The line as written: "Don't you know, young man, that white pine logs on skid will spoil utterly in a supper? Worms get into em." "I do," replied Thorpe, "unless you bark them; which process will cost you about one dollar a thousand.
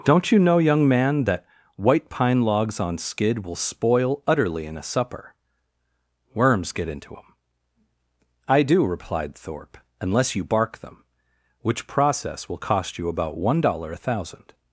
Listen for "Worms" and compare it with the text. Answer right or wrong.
right